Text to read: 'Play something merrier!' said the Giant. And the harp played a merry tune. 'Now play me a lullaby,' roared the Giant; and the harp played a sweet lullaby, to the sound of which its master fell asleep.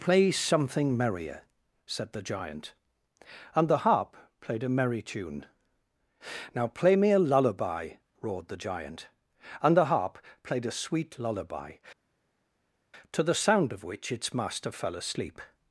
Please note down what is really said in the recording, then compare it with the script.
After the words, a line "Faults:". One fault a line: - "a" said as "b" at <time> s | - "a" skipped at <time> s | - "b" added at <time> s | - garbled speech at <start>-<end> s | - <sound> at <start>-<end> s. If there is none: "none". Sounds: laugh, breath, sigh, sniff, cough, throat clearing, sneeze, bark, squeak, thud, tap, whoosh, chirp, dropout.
'Play something merrier!' said the Giant. And the harp played a merry tune. 'Now play me a lullaby,' roared the Giant; and the harp played a sweet lullaby, to the sound of which its master fell asleep.
Faults:
none